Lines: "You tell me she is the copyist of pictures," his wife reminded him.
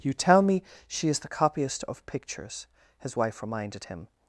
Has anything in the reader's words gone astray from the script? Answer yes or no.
no